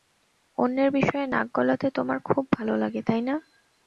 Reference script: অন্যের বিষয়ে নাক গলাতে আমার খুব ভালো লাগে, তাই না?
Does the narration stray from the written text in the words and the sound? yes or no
yes